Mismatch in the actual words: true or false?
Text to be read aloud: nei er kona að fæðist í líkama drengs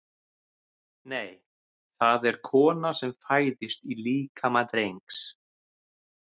true